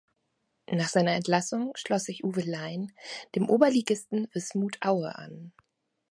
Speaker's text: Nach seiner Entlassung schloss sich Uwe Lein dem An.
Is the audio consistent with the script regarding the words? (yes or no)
no